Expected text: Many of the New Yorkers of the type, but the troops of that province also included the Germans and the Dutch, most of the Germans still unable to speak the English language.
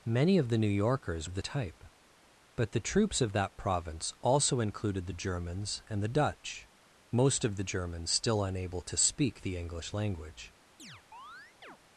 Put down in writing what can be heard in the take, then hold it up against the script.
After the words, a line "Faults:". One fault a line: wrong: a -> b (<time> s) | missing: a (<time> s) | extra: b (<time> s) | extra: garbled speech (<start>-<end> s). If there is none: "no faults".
Many of the New Yorkers of the type, but the troops of that province also included the Germans and the Dutch, most of the Germans still unable to speak the English language.
Faults:
no faults